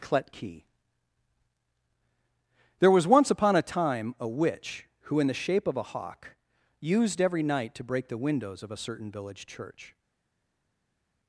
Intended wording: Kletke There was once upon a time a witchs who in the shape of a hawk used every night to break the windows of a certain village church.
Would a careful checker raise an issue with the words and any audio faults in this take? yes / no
yes